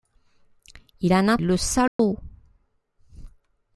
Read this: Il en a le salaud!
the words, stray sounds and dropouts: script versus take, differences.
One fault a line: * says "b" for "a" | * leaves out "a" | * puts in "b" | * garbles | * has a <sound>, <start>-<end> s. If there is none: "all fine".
* has a dropout, 1.9-2.0 s